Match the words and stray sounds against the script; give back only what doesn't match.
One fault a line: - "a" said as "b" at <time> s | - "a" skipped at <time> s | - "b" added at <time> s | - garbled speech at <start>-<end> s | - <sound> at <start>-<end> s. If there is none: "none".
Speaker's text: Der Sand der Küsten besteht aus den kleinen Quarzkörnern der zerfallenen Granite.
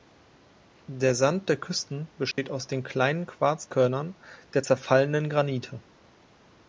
- dropout at 2.3-2.4 s